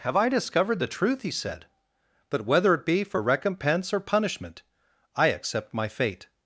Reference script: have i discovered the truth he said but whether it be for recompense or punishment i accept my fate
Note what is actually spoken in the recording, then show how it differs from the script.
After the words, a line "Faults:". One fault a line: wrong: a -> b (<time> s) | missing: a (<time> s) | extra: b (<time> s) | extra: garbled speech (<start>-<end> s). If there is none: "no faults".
have i discovered the truth he said but whether it be for recompense or punishment i accept my fate
Faults:
no faults